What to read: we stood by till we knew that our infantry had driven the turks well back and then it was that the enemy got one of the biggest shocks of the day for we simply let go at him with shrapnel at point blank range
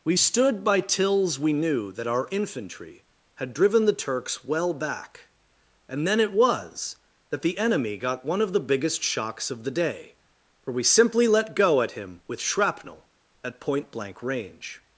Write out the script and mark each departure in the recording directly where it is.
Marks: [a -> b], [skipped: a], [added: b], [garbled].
we stood by [till -> tills] we knew that our infantry had driven the turks well back and then it was that the enemy got one of the biggest shocks of the day for we simply let go at him with shrapnel at point blank range